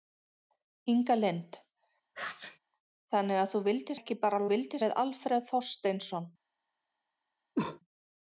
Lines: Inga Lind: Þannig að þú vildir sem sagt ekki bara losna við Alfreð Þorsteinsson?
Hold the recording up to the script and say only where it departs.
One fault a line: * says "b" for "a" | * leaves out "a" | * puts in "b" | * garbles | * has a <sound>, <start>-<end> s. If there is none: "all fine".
* has a sneeze, 2.1-2.6 s
* leaves out "sem sagt"
* says "vildir" for "losna"
* has a cough, 7.6-7.8 s